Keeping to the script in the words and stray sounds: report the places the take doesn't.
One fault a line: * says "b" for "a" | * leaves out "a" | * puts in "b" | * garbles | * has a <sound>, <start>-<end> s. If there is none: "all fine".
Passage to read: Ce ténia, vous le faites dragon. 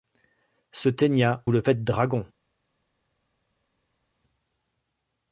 * leaves out "vous"